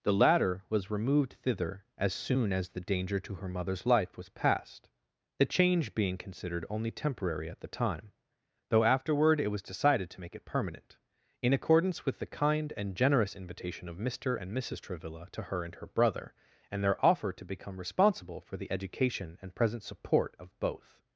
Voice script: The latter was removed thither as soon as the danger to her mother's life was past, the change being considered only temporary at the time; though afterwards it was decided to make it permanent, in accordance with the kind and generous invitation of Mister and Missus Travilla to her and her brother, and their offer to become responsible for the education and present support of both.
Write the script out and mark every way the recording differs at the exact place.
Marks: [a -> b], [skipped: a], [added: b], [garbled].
The latter was removed thither as soon as the danger to her mother's life was past, the change being considered only temporary at the time; though [afterwards -> afterward] it was decided to make it permanent, in accordance with the kind and generous invitation of Mister and Missus Travilla to her and her brother, and their offer to become responsible for the education and present support of both.